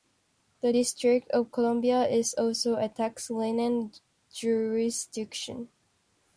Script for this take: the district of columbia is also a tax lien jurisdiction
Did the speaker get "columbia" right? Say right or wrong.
right